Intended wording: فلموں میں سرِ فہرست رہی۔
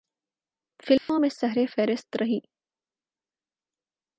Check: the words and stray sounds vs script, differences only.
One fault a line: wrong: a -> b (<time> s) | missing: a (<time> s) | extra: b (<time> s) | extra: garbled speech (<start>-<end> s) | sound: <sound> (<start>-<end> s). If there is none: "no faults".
sound: dropout (1.0-1.1 s)